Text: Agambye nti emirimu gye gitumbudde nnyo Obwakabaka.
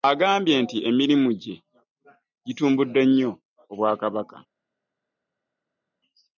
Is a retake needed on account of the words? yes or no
no